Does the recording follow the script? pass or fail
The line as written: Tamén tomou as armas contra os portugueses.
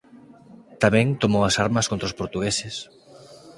pass